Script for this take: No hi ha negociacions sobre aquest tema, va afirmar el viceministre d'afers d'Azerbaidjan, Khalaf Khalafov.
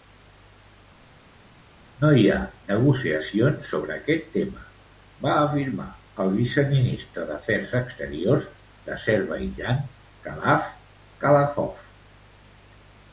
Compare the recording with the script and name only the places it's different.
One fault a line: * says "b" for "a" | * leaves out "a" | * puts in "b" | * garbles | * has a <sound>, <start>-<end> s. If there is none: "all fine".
* puts in "exteriors"